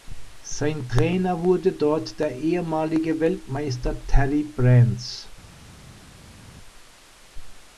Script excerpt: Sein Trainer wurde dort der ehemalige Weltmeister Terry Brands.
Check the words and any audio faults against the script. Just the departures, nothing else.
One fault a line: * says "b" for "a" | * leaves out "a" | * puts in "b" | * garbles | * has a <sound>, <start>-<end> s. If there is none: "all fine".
all fine